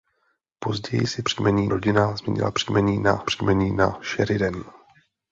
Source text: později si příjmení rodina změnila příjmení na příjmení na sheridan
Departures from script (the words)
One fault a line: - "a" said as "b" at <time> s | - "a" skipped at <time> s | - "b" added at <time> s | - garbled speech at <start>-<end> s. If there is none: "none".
none